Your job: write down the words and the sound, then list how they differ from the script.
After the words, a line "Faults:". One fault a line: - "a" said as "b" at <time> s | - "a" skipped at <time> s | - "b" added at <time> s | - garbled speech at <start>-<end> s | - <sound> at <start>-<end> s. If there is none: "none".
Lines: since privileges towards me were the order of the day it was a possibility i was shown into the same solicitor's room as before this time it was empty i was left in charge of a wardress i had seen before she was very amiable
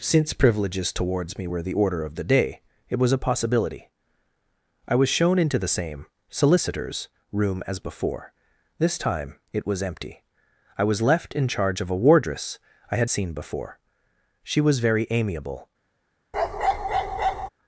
since privileges towards me were the order of the day it was a possibility i was shown into the same solicitor's room as before this time it was empty i was left in charge of a wardress i had seen before she was very amiable
Faults:
- bark at 16.3-17.5 s